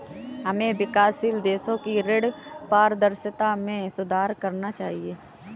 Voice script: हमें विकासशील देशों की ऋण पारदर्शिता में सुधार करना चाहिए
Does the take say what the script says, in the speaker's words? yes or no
yes